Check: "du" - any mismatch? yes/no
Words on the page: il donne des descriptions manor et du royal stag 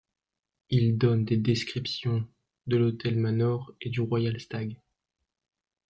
no